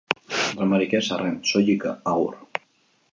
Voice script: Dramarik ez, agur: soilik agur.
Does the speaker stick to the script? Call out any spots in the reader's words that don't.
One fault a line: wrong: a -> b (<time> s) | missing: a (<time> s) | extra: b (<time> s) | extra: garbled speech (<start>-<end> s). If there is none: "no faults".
wrong: agur -> arren (1.2 s)